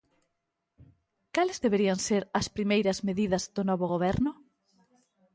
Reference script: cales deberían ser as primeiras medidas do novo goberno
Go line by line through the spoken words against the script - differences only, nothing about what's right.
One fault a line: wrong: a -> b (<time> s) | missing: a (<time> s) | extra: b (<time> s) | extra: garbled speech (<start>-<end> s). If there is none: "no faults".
no faults